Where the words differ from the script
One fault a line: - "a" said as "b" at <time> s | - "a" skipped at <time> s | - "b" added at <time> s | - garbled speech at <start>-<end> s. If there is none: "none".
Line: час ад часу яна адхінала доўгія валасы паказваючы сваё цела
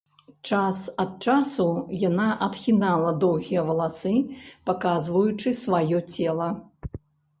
none